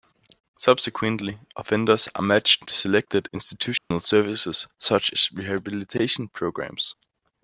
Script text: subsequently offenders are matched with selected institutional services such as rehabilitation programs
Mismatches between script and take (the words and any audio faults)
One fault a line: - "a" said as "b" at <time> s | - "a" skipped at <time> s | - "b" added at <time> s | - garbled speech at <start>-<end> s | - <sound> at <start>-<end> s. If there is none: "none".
- "with" skipped at 2.6 s
- dropout at 3.8-3.9 s